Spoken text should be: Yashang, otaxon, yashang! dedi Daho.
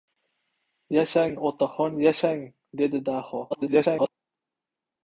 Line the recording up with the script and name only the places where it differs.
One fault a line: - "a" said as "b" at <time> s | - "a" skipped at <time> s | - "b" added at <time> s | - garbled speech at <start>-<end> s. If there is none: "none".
- garbled speech at 3.5-4.1 s